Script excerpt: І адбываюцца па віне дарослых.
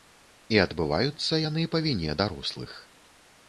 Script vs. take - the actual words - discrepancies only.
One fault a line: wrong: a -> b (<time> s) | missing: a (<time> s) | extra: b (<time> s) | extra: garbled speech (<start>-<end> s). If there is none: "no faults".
extra: яны (1.4 s)